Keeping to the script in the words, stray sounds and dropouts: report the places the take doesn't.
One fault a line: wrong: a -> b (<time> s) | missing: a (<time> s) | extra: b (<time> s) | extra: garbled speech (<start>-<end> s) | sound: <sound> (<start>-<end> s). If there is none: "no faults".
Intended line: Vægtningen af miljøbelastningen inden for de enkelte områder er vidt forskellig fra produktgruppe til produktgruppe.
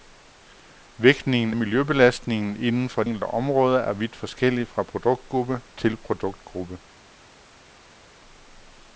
missing: af (1.5 s)
missing: de (3.0 s)